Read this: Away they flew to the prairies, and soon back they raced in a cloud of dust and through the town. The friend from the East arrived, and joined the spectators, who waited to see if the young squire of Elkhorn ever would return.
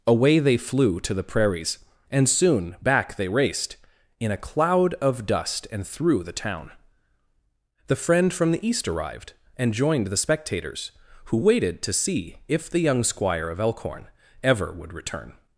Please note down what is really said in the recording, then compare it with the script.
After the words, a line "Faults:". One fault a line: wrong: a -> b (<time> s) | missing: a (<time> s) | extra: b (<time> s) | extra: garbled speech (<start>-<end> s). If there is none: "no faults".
Away they flew to the prairies, and soon back they raced in a cloud of dust and through the town. The friend from the East arrived, and joined the spectators, who waited to see if the young squire of Elkhorn ever would return.
Faults:
no faults